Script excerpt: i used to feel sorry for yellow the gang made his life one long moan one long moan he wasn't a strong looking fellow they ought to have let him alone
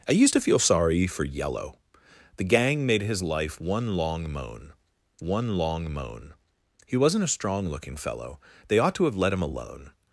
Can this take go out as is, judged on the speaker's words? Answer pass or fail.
pass